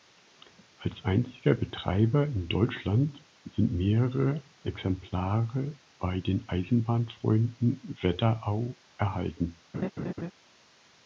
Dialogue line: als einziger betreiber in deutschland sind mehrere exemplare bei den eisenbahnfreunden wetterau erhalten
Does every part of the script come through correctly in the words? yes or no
yes